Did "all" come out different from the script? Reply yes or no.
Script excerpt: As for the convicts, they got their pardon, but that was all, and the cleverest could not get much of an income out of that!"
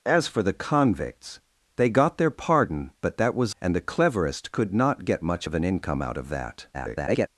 yes